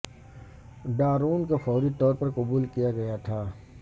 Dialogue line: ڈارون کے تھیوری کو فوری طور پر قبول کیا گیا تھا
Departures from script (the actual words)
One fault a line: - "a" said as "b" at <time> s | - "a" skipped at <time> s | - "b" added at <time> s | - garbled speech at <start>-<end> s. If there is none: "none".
- "کے تھیوری" skipped at 1.4 s